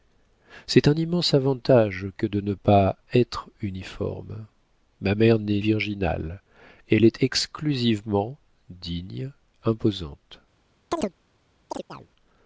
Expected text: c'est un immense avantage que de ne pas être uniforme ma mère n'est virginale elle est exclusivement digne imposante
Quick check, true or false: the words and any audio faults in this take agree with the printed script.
false